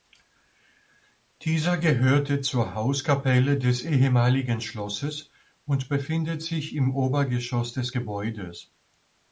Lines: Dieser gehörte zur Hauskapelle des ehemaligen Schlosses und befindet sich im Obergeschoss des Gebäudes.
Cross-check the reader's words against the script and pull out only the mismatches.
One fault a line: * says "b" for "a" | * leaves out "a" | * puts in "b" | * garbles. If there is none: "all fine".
all fine